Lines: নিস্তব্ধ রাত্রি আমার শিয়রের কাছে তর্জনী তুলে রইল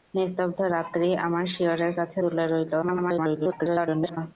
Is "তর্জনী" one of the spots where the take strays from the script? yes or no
yes